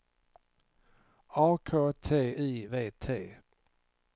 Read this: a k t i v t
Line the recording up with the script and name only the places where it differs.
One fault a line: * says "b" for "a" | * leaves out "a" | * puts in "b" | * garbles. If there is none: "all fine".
all fine